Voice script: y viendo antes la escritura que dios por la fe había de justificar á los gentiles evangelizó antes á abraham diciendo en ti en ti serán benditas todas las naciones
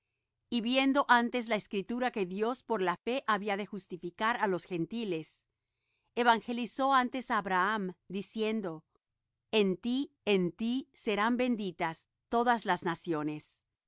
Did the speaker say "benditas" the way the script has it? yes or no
yes